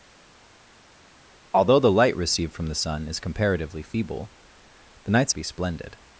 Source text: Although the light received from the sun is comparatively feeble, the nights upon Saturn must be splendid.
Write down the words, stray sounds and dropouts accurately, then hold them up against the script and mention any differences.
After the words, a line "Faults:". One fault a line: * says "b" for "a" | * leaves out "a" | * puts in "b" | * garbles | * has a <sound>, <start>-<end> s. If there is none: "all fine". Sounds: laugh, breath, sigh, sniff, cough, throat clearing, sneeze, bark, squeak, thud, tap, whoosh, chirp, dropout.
Although the light received from the sun is comparatively feeble, the nights be splendid.
Faults:
* leaves out "upon Saturn must"